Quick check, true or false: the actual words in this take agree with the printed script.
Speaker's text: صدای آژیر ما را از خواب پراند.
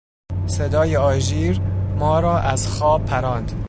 true